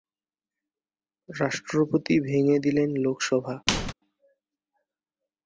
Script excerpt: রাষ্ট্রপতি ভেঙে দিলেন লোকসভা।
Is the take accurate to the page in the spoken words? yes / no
yes